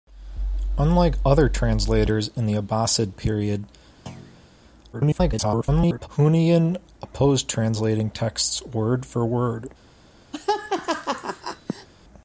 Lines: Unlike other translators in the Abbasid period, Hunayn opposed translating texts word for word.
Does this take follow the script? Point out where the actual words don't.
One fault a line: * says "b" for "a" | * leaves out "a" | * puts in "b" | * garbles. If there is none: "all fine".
* garbles